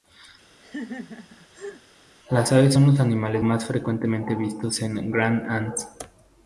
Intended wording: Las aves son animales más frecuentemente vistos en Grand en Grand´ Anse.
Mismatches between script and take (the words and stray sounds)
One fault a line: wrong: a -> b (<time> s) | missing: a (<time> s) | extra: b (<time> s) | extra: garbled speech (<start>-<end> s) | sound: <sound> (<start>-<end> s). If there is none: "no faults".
sound: laugh (0.6-1.8 s)
extra: los (2.9 s)
missing: en Grand (5.5 s)